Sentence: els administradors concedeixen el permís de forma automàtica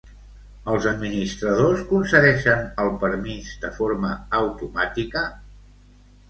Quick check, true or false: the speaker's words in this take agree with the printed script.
true